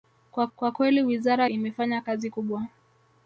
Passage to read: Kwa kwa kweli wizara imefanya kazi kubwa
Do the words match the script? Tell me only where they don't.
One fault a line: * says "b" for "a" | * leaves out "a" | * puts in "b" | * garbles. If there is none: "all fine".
all fine